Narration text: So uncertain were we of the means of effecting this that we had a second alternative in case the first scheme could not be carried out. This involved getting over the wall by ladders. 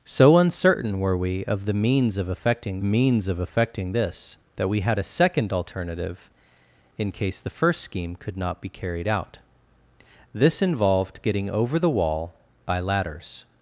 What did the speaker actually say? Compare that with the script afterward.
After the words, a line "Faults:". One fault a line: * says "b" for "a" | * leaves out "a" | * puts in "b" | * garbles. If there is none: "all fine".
So uncertain were we of the means of effecting means of effecting this that we had a second alternative in case the first scheme could not be carried out. This involved getting over the wall by ladders.
Faults:
* puts in "means of effecting"